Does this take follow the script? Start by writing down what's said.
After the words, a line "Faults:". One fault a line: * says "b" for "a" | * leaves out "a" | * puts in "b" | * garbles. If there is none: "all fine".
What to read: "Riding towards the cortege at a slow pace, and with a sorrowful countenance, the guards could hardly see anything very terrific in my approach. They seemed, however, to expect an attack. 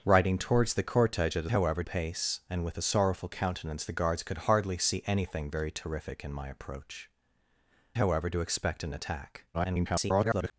"Riding towards the cortege at a however pace, and with a sorrowful countenance, the guards could hardly see anything very terrific in my approach. However, to expect an attack. [garbled]
Faults:
* says "however" for "slow"
* leaves out "They seemed"
* garbles